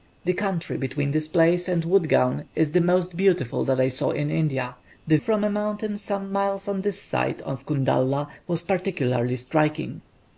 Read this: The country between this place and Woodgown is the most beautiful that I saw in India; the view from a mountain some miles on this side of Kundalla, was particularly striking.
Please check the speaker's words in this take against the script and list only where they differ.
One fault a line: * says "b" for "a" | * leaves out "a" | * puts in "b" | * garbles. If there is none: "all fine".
* leaves out "view"